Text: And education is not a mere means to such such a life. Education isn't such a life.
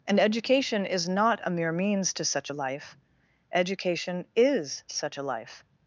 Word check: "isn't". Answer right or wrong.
wrong